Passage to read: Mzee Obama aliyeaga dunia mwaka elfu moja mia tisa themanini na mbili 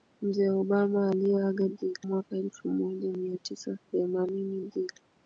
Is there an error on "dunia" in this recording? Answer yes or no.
yes